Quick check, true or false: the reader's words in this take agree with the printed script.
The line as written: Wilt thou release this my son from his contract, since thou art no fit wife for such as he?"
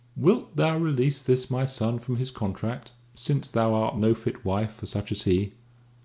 true